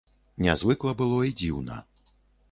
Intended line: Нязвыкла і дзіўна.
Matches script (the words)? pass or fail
fail